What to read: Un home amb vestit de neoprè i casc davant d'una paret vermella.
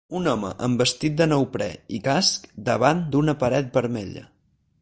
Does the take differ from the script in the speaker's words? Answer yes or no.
no